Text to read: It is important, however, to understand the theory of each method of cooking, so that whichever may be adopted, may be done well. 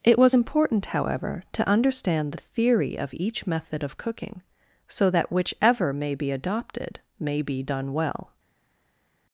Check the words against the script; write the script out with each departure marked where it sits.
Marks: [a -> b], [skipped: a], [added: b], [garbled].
It [is -> was] important, however, to understand the theory of each method of cooking, so that whichever may be adopted, may be done well.